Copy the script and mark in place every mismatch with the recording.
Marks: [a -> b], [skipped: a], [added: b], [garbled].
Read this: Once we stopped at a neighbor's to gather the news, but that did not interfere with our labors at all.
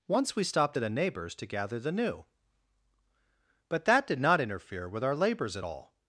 Once we stopped at a neighbor's to gather the [news, -> new] but that did not interfere with our labors at all.